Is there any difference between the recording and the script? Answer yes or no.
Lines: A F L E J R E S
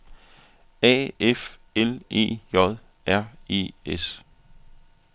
no